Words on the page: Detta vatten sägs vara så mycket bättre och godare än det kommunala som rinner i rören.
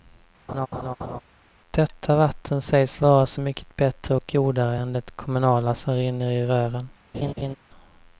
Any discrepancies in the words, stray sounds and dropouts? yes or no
yes